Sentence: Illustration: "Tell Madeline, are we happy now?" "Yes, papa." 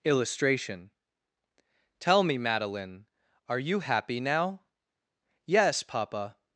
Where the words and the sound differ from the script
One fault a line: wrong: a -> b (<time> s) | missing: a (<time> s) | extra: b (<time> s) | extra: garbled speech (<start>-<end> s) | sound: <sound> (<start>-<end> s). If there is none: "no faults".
extra: me (2.2 s)
wrong: we -> you (3.6 s)